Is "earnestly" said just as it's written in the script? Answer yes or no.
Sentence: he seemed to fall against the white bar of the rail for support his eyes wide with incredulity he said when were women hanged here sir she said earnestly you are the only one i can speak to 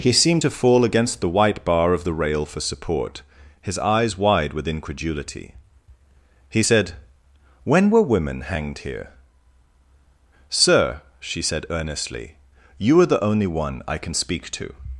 yes